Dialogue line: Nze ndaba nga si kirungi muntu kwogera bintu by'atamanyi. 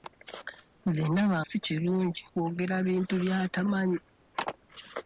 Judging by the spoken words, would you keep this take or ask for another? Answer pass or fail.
fail